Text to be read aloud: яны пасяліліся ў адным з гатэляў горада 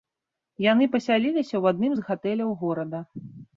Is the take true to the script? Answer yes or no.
yes